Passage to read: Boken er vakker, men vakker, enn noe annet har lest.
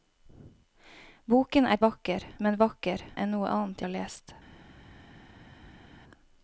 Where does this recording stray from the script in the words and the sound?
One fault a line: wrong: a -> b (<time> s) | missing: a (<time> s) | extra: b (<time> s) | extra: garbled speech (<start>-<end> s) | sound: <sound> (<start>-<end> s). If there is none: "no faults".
no faults